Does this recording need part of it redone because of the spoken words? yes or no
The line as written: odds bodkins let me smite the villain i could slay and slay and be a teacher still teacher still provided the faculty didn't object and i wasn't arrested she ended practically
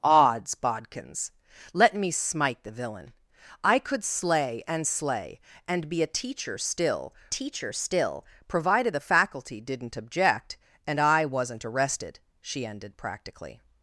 no